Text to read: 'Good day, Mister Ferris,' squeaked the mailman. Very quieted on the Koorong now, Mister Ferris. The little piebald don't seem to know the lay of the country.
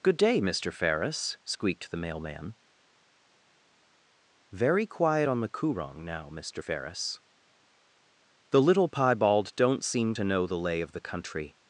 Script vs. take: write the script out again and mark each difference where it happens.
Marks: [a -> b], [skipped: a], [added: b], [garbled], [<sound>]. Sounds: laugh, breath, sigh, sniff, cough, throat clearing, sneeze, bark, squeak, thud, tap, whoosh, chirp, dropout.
'Good day, Mister Ferris,' squeaked the mailman. Very [quieted -> quiet] on the Koorong now, Mister Ferris. The little piebald don't seem to know the lay of the country.